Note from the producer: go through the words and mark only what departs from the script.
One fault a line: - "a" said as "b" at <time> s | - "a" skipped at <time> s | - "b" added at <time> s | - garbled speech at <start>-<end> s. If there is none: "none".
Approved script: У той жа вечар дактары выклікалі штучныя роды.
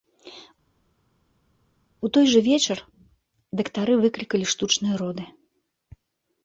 none